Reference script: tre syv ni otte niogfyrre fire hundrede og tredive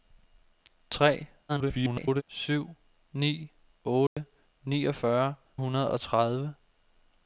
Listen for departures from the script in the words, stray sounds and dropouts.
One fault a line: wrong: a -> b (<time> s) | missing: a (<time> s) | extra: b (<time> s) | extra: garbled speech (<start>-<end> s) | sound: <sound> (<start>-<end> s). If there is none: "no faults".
extra: garbled speech (1.5-2.2 s)
sound: dropout (4.1-4.2 s)
missing: fire (5.3 s)